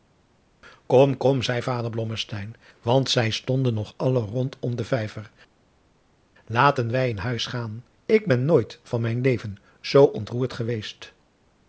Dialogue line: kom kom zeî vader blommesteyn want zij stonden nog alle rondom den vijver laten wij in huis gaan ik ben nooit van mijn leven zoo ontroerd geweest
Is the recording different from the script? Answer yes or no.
no